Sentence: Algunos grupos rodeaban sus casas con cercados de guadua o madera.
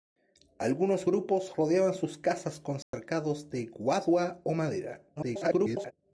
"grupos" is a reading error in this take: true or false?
false